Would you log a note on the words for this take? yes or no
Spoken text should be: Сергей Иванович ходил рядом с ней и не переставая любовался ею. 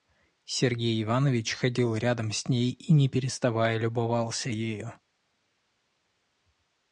no